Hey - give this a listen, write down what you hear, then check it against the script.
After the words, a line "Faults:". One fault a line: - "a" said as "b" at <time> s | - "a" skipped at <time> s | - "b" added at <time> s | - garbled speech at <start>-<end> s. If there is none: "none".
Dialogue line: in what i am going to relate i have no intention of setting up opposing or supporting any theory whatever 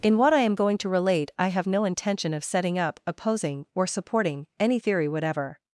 in what i am going to relate i have no intention of setting up opposing or supporting any theory whatever
Faults:
none